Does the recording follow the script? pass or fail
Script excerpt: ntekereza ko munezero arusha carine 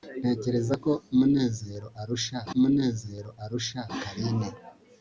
fail